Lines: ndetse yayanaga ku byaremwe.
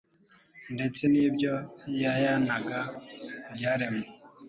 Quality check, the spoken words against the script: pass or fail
fail